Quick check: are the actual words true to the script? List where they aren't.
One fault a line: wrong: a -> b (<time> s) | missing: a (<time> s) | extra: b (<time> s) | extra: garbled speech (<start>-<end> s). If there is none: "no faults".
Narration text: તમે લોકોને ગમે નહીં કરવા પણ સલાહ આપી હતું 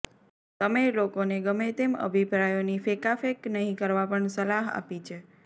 extra: તેમ અભિપ્રાયોની ફેંકાફેંક (1.8 s)
wrong: હતું -> છે (5.0 s)